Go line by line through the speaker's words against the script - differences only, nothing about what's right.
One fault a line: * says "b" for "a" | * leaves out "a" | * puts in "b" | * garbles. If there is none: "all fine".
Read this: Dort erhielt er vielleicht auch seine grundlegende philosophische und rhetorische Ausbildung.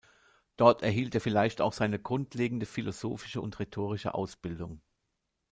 all fine